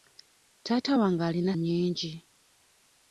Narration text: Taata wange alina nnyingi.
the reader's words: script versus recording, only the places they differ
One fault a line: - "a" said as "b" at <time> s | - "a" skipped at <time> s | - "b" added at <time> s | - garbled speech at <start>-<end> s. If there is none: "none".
none